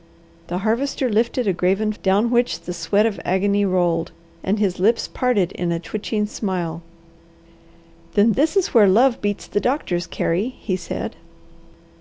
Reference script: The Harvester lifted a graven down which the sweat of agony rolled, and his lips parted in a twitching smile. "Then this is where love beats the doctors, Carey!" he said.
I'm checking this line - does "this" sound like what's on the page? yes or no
yes